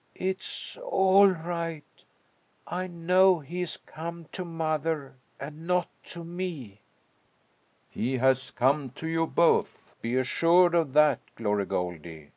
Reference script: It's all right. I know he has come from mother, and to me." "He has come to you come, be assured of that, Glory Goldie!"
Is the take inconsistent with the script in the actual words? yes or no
yes